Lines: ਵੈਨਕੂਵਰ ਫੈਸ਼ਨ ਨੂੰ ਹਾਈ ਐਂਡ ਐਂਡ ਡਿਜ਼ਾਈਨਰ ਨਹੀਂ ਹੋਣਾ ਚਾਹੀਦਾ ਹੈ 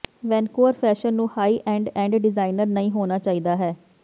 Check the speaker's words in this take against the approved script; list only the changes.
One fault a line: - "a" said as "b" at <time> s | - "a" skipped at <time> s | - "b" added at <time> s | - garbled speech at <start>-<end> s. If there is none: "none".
none